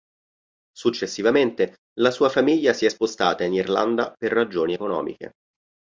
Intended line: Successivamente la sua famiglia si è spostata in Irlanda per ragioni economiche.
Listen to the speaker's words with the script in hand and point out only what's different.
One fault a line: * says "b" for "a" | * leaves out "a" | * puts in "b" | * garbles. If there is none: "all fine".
all fine